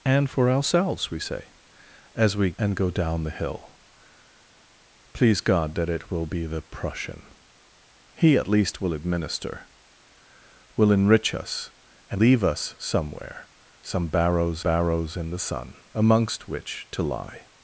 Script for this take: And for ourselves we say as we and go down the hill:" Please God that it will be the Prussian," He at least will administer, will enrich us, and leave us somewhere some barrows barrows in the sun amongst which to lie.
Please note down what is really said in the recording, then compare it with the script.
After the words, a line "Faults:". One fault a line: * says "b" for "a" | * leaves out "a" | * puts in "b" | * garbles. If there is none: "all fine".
And for ourselves we say as we and go down the hill:" Please God that it will be the Prussian," He at least will administer, will enrich us, and leave us somewhere some barrows barrows in the sun amongst which to lie.
Faults:
all fine